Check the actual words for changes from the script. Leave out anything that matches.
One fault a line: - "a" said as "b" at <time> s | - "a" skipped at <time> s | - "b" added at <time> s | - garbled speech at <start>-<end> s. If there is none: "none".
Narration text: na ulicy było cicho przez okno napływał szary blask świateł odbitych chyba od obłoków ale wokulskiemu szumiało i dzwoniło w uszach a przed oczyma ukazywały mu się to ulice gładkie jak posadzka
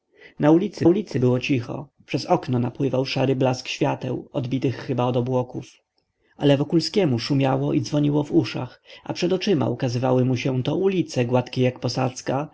- "ulicy" added at 0.9 s